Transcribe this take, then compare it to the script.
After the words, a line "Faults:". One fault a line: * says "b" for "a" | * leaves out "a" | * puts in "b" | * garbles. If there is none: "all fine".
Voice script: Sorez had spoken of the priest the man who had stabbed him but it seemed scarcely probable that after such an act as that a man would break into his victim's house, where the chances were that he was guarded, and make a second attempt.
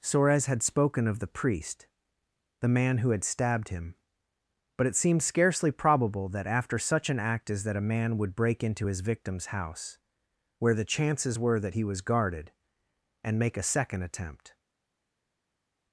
Sorez had spoken of the priest the man who had stabbed him but it seemed scarcely probable that after such an act as that a man would break into his victim's house, where the chances were that he was guarded, and make a second attempt.
Faults:
all fine